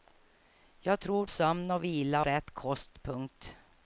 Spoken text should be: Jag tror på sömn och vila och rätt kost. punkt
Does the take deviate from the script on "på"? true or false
true